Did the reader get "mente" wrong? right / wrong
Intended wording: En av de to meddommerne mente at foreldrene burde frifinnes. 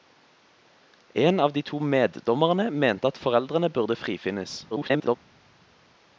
right